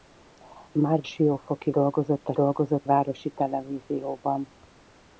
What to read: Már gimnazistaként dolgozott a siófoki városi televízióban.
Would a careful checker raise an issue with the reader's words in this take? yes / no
yes